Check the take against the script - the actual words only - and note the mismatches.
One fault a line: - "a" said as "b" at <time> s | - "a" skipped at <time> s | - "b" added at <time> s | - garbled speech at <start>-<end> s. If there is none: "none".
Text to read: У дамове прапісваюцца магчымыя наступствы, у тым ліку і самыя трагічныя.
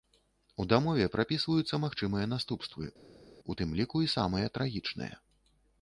none